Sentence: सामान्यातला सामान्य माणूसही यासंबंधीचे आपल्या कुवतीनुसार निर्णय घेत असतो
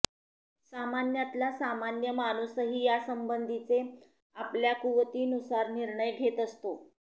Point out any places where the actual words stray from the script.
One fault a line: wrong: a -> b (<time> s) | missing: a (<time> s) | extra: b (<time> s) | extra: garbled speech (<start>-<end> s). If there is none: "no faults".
no faults